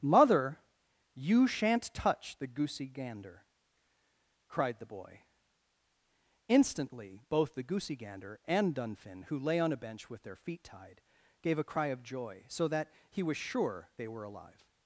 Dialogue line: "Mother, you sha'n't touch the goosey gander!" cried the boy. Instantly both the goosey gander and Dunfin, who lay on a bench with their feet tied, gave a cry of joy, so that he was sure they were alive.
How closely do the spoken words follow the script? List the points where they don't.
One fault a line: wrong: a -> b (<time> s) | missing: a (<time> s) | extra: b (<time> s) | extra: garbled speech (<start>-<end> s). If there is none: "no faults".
no faults